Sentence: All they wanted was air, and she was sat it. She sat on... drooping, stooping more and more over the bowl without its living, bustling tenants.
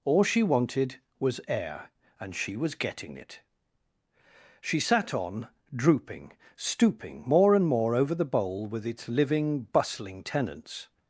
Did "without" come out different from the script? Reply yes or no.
yes